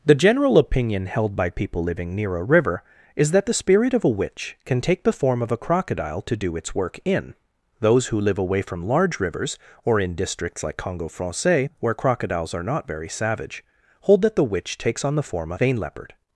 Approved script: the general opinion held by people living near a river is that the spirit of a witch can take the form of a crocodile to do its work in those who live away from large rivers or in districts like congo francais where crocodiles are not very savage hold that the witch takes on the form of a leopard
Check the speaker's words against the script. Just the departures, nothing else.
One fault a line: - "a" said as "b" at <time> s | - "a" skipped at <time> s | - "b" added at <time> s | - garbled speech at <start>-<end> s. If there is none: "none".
- "vein" added at 15.6 s